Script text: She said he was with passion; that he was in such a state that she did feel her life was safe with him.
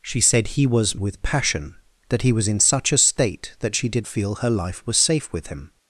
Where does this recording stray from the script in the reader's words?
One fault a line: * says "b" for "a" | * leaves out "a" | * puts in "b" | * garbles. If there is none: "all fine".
all fine